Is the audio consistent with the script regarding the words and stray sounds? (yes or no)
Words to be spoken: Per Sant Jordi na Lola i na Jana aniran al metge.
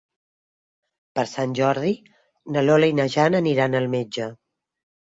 yes